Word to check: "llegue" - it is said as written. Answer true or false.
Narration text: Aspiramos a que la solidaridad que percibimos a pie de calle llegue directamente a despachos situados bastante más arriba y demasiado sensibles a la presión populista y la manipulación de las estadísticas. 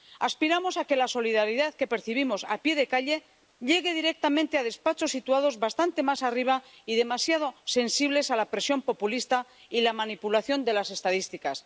true